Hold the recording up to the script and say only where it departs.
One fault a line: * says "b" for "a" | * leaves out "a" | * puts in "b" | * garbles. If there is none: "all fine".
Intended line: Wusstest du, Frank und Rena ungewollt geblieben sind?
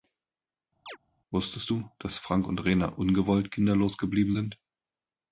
* puts in "dass"
* puts in "kinderlos"